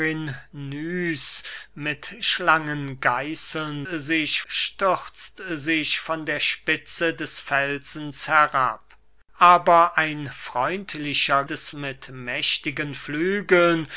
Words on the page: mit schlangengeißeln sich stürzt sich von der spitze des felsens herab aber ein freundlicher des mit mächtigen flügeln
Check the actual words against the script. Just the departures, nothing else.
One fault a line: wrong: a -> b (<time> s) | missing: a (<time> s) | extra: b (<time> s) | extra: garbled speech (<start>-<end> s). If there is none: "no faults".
no faults